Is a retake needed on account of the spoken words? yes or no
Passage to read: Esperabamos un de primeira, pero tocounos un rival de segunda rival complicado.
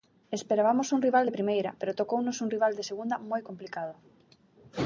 yes